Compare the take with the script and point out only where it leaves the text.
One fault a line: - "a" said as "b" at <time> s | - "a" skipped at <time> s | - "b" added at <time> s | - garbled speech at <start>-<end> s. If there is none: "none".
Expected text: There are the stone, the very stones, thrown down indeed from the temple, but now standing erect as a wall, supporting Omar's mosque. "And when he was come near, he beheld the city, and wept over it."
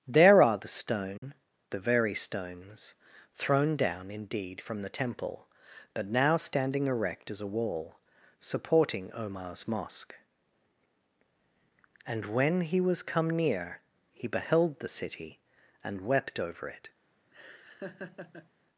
none